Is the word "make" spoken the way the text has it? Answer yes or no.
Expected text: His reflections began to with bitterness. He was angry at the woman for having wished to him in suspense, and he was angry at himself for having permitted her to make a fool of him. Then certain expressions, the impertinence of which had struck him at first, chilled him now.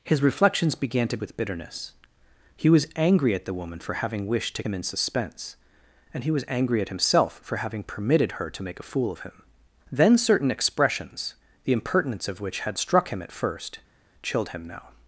yes